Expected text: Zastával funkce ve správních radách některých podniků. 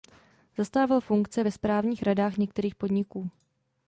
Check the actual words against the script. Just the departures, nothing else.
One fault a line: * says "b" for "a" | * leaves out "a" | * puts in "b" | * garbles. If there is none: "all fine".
all fine